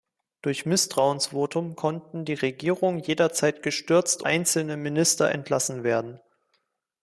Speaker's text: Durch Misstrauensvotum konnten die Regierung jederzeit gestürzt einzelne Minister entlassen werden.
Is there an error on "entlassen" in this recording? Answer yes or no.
no